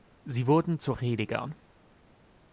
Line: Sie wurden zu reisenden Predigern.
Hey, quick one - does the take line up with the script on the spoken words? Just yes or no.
no